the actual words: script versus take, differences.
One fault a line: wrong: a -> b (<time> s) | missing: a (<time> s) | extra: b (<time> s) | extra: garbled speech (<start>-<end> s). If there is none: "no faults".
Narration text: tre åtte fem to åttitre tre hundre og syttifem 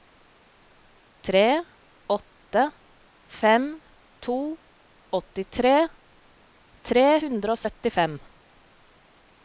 no faults